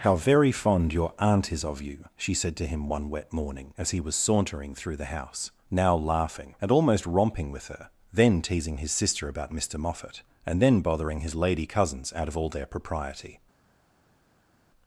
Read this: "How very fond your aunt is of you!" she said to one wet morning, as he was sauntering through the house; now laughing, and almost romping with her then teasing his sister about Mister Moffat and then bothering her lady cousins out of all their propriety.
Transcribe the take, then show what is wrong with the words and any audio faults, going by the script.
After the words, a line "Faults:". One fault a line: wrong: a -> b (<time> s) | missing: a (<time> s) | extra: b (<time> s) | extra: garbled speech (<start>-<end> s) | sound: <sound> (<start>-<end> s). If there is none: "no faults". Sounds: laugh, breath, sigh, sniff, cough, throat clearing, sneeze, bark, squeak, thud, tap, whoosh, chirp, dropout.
"How very fond your aunt is of you!" she said to him one wet morning, as he was sauntering through the house; now laughing, and almost romping with her then teasing his sister about Mister Moffat and then bothering his lady cousins out of all their propriety.
Faults:
extra: him (2.6 s)
wrong: her -> his (11.2 s)